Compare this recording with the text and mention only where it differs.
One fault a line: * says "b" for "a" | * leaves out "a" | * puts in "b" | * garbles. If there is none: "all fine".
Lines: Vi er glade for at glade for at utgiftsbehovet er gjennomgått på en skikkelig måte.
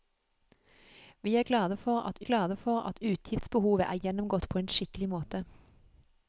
all fine